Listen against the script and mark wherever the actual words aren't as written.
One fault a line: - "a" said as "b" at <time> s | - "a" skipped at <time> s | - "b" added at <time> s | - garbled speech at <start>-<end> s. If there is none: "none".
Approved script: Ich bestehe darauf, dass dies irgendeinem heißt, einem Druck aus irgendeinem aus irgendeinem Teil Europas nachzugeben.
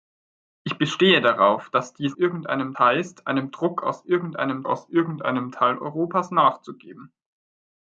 none